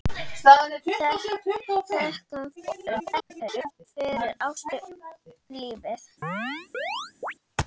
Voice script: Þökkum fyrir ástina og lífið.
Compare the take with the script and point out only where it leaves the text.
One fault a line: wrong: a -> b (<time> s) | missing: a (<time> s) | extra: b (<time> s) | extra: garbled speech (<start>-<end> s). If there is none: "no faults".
extra: garbled speech (2.6-3.9 s)
missing: og (4.8 s)